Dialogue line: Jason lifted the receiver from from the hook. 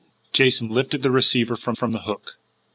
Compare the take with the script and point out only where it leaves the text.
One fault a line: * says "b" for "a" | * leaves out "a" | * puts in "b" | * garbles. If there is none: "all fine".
all fine